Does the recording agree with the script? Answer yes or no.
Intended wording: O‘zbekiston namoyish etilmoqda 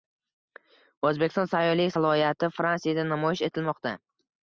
no